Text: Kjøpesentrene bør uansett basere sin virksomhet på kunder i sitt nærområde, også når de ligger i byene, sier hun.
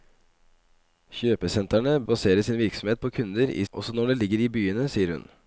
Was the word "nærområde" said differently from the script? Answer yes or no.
yes